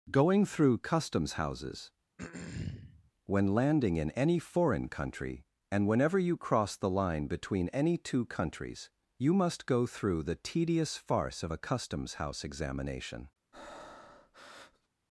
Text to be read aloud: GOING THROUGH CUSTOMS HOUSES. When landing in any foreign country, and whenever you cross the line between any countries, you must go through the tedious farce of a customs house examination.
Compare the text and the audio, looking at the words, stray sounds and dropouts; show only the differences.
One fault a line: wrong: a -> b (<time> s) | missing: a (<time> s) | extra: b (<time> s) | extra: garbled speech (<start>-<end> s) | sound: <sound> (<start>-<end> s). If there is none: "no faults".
sound: throat clearing (2.2-3.1 s)
extra: two (8.0 s)
sound: breath (13.5-14.9 s)